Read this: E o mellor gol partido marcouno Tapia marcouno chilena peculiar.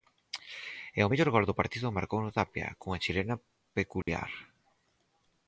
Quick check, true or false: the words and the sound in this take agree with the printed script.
false